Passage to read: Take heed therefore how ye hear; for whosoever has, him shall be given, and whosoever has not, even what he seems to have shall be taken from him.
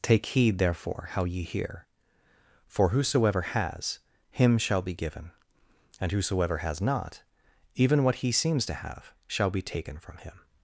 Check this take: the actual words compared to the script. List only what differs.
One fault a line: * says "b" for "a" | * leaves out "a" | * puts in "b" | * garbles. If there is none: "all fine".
all fine